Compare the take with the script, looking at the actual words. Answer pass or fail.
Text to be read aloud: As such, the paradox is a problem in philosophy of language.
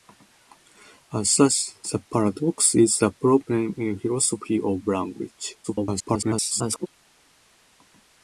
fail